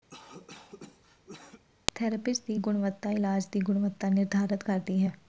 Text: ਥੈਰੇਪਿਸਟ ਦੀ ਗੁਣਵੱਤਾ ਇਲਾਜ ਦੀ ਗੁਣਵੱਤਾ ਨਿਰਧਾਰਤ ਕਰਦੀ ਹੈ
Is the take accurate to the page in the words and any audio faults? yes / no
no